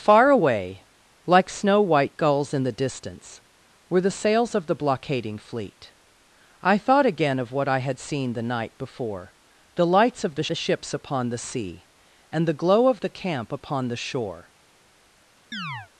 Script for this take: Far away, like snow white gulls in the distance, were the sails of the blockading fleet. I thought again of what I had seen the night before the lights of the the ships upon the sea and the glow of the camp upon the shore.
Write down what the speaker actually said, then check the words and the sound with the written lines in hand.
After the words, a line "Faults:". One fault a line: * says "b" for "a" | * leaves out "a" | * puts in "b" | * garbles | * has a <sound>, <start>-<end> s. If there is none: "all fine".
Far away, like snow white gulls in the distance, were the sails of the blockading fleet. I thought again of what I had seen the night before the lights of the the ships upon the sea and the glow of the camp upon the shore.
Faults:
* has a chirp, 15.5-15.9 s